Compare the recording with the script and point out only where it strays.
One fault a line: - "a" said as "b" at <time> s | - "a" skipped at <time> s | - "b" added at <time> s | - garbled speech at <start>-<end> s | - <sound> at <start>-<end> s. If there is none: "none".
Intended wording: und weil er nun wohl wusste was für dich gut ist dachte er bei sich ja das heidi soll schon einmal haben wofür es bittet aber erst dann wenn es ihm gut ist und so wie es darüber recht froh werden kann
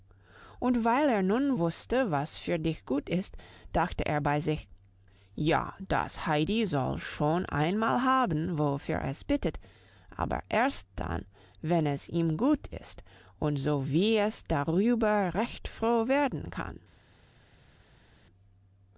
- "wohl" skipped at 1.6 s